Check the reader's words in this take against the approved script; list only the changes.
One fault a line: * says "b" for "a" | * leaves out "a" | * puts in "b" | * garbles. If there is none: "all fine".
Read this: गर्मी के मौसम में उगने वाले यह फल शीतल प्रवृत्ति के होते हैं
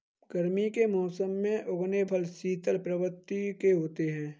* leaves out "वाले यह"